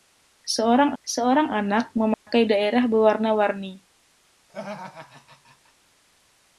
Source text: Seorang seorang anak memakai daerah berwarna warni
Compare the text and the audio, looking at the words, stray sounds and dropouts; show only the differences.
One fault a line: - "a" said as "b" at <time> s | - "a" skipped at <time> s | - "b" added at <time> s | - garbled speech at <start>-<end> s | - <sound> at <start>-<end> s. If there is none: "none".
- dropout at 2.1-2.3 s
- laugh at 4.5-5.7 s